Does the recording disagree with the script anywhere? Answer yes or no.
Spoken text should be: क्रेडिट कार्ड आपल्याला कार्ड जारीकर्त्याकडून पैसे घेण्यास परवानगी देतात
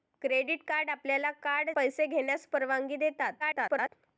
yes